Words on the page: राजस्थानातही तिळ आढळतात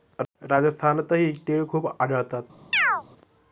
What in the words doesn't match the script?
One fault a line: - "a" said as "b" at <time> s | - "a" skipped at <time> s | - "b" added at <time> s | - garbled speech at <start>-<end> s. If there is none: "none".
- "खूप" added at 1.7 s